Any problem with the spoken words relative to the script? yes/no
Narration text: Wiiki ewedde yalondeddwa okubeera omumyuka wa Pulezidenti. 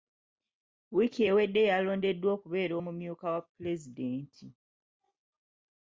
no